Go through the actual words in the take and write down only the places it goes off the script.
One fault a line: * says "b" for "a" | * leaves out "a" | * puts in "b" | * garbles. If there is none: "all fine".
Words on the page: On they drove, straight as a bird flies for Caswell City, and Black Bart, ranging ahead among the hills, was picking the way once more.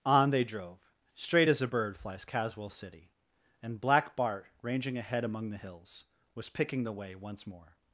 * leaves out "for"